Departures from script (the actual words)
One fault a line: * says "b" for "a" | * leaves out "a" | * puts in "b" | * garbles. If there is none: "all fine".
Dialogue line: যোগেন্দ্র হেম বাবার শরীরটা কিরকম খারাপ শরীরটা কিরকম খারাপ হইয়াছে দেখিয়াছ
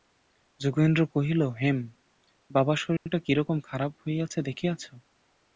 * puts in "কহিল"
* leaves out "শরীরটা কিরকম খারাপ"